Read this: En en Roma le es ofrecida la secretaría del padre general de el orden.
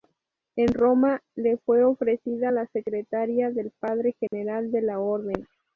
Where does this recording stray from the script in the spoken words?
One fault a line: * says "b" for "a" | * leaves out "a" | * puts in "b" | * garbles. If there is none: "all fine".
* leaves out "en"
* says "fue" for "es"
* says "la" for "el"